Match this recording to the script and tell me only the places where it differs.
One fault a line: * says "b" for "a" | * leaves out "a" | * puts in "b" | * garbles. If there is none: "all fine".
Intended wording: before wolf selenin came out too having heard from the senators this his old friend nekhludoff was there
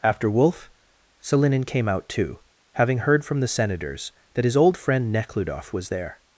* says "after" for "before"
* says "that" for "this"